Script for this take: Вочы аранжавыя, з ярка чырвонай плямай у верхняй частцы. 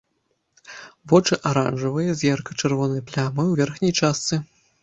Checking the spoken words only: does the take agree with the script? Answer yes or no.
yes